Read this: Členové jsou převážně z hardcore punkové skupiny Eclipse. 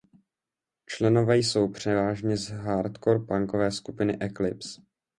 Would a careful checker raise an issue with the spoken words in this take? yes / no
no